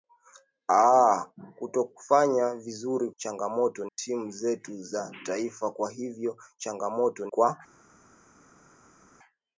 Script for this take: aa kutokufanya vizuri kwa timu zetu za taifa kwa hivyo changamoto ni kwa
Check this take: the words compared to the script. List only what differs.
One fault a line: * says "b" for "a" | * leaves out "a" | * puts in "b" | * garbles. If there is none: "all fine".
* says "changamoto" for "kwa"
* leaves out "ni"